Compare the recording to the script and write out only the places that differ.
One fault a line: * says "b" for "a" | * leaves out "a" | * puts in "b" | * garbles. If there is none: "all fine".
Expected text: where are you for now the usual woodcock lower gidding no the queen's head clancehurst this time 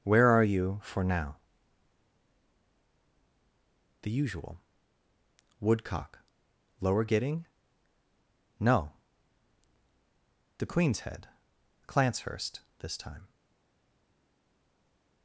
all fine